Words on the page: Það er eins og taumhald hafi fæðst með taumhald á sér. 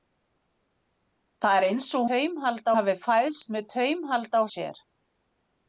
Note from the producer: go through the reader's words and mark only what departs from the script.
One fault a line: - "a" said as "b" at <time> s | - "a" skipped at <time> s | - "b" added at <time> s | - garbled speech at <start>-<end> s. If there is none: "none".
none